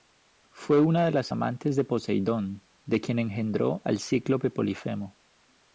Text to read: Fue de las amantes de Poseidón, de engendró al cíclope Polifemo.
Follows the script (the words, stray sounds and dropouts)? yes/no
no